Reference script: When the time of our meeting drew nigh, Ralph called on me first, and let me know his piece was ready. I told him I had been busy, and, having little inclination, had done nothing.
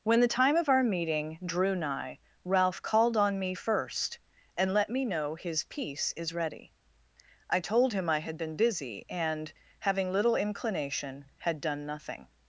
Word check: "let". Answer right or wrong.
right